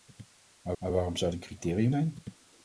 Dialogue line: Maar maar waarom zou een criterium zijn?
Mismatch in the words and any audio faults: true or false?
false